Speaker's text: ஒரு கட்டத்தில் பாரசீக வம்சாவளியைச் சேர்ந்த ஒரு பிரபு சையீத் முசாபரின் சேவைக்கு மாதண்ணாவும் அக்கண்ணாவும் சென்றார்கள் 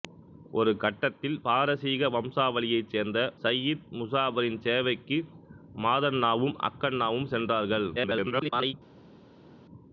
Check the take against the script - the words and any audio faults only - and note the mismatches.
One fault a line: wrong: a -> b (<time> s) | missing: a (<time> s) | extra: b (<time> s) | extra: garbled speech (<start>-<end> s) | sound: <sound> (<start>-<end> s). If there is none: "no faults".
missing: ஒரு பிரபு (3.2 s)
extra: garbled speech (8.0-8.7 s)